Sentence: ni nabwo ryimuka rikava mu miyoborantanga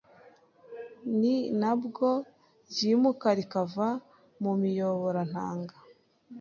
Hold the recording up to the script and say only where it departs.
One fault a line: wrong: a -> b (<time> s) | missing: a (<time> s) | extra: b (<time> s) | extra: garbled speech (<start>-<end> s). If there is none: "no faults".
no faults